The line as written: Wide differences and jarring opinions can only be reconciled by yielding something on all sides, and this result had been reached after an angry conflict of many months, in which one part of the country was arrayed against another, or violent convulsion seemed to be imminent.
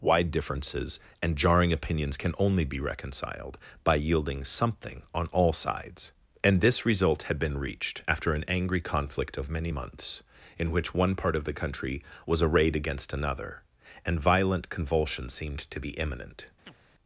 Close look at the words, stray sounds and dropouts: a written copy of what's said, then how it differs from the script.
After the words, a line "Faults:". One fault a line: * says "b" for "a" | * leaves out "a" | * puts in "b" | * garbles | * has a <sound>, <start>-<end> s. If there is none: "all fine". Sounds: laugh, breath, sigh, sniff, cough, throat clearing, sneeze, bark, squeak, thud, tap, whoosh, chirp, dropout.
Wide differences and jarring opinions can only be reconciled by yielding something on all sides, and this result had been reached after an angry conflict of many months, in which one part of the country was arrayed against another, and violent convulsion seemed to be imminent.
Faults:
* says "and" for "or"
* has a chirp, 16.7-16.8 s